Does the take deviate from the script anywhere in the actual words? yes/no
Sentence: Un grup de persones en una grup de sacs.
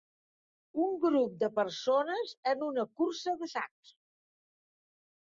yes